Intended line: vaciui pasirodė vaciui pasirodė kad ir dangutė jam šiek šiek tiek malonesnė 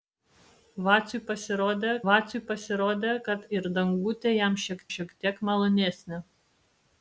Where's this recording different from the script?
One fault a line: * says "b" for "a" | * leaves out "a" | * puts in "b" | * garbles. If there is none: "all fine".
all fine